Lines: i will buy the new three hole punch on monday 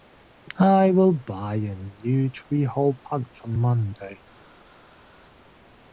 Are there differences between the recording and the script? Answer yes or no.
yes